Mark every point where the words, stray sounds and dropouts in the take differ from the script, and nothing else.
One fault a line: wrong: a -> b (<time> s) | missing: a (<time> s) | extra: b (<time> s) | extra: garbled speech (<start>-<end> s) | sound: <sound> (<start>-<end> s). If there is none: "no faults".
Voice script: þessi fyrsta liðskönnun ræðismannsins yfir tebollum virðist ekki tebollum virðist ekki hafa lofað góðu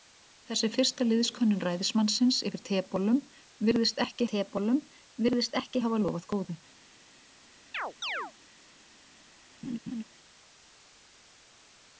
sound: chirp (7.7-8.3 s)
sound: laugh (9.6-10.0 s)